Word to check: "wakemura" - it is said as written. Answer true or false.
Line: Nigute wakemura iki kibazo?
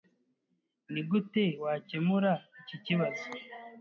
true